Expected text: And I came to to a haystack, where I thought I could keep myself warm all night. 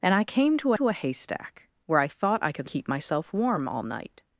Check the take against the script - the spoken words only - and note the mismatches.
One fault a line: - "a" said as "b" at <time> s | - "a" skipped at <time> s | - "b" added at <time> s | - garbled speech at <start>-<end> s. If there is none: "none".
none